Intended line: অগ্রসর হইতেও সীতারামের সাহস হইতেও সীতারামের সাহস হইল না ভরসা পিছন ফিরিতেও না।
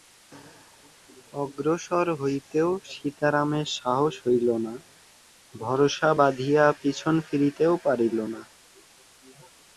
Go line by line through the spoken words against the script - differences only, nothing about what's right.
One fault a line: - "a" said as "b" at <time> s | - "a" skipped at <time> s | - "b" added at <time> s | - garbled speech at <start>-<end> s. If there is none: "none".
- "হইতেও সীতারামের সাহস" skipped at 4.1 s
- "বাঁধিয়া" added at 6.2 s
- "পারিল" added at 7.8 s